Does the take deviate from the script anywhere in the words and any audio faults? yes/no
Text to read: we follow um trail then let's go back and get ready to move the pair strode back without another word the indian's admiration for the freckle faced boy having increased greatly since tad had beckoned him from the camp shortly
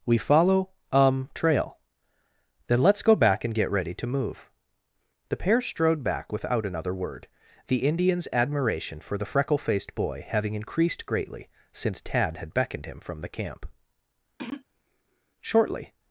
yes